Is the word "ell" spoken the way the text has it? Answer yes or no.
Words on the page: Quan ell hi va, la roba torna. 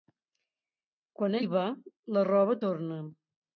no